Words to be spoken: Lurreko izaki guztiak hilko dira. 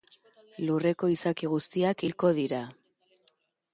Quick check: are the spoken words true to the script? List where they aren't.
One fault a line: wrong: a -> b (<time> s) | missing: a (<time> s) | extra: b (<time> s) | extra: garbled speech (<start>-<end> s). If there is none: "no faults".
no faults